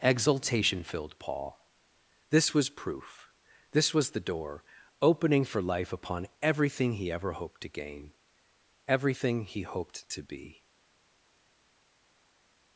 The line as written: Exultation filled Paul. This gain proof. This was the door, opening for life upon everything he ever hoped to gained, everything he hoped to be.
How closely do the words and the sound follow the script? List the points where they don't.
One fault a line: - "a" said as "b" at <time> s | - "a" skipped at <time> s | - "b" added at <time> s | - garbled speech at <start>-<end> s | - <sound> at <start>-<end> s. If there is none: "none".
- "gain" said as "was" at 2.5 s
- "gained" said as "gain" at 7.7 s